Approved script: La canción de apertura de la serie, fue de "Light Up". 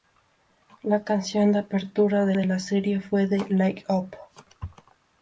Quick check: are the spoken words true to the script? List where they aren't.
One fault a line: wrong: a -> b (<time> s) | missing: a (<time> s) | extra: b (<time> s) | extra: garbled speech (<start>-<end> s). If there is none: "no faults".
extra: de (2.3 s)